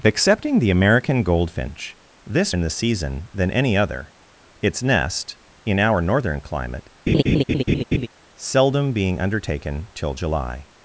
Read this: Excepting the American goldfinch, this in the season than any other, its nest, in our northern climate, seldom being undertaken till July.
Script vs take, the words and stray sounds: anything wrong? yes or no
yes